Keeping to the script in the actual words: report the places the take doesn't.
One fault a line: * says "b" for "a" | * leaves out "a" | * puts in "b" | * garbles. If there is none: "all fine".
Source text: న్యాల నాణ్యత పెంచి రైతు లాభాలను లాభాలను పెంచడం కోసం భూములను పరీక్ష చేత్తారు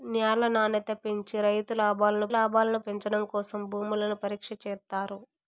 all fine